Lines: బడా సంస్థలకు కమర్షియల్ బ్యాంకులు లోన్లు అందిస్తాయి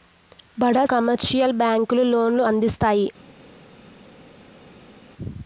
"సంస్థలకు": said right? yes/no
no